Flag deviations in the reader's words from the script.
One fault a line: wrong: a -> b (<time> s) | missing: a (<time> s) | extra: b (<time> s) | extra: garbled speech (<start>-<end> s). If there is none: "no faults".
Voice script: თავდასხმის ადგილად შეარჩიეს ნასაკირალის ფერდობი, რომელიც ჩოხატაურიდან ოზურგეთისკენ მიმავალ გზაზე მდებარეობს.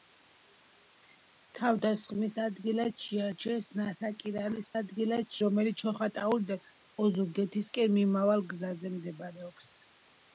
wrong: ფერდობი -> ადგილად (4.8 s)